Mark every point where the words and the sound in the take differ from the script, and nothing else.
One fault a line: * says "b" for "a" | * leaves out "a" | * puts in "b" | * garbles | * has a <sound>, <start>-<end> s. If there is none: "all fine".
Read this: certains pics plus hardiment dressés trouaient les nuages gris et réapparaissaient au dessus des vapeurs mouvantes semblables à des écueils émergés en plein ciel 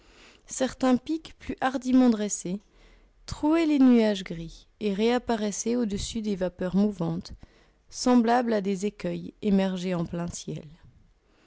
all fine